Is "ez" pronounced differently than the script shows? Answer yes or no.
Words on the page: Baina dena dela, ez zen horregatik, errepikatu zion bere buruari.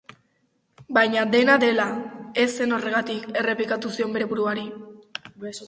no